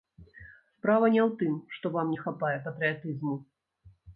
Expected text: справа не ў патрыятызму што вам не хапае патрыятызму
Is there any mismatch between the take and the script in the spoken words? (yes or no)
yes